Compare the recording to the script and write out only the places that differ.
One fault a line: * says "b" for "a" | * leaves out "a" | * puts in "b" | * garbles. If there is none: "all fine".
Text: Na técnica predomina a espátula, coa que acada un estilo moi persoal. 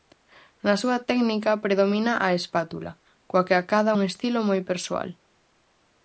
* puts in "súa"